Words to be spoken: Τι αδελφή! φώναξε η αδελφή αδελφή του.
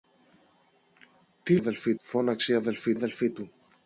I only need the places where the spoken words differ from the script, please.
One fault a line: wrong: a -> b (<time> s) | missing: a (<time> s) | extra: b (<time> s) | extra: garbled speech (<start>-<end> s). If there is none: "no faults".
no faults